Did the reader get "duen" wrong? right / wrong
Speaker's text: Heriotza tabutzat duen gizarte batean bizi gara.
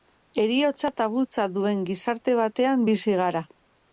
right